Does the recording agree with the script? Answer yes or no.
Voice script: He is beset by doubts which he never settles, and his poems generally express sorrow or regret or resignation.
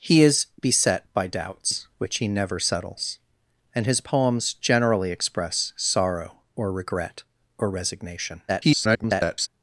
no